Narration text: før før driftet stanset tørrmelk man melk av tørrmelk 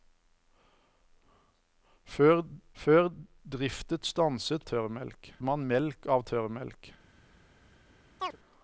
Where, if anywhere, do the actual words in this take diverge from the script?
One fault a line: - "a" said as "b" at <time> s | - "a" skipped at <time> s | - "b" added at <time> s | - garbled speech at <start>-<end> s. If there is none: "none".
none